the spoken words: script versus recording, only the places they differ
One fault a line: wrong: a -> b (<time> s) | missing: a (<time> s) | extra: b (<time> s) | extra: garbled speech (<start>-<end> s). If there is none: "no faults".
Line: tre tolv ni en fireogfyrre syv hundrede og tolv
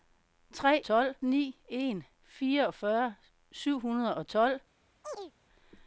no faults